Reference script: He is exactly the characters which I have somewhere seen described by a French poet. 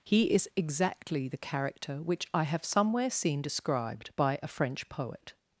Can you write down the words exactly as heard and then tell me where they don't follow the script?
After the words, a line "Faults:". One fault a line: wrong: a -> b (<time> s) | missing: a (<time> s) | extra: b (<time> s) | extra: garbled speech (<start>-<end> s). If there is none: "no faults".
He is exactly the character which I have somewhere seen described by a French poet.
Faults:
wrong: characters -> character (1.4 s)